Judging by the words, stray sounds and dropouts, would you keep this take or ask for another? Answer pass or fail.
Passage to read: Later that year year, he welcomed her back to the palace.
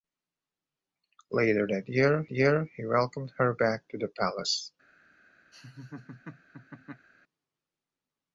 fail